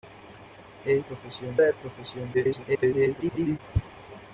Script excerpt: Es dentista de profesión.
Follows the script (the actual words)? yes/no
no